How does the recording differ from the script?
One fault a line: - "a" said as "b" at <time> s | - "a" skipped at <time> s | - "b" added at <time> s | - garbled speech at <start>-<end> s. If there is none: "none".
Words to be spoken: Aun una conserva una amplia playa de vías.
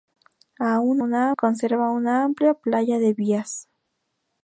none